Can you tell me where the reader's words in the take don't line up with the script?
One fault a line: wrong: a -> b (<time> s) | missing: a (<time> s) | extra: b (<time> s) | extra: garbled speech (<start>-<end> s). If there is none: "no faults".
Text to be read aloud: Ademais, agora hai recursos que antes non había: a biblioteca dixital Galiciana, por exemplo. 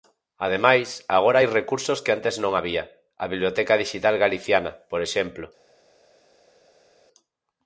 no faults